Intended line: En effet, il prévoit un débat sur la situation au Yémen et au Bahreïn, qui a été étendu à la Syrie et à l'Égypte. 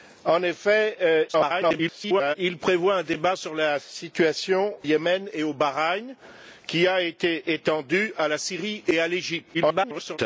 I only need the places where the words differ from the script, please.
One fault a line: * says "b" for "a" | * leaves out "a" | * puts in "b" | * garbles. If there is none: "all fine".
* garbles
* leaves out "au"
* garbles